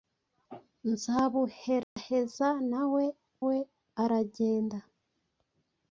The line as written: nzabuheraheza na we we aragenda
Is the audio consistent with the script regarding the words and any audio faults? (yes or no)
no